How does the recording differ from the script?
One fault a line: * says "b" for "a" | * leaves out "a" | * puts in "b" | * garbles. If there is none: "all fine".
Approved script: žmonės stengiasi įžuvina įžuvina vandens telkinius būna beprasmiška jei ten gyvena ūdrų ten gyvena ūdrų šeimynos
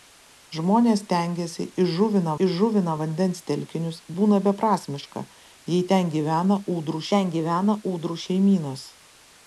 all fine